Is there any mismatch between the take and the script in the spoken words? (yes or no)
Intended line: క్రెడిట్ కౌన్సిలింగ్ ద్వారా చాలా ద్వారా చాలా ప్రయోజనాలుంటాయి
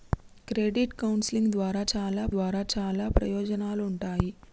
no